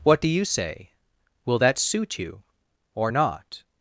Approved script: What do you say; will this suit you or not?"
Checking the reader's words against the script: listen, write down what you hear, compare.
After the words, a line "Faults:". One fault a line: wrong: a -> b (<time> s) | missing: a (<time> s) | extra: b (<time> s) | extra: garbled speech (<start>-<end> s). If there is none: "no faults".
What do you say; will that suit you or not?"
Faults:
wrong: this -> that (1.6 s)